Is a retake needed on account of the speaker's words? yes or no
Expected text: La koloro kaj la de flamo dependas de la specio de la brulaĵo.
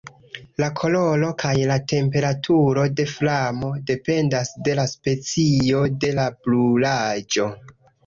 yes